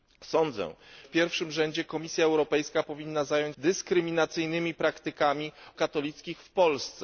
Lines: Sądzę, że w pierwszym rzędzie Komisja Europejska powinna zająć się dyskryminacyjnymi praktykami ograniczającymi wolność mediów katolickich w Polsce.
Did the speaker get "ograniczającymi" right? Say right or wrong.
wrong